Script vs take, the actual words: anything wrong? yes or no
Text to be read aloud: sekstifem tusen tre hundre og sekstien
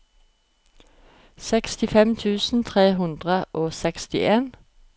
no